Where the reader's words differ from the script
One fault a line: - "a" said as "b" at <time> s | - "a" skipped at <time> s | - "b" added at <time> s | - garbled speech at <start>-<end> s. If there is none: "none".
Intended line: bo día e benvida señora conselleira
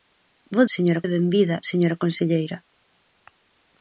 - "día" said as "señora" at 0.8 s